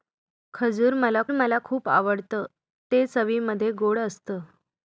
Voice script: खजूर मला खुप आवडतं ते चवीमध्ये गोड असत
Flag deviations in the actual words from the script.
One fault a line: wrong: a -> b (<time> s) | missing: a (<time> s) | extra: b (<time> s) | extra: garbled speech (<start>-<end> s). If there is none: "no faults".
extra: मला (1.3 s)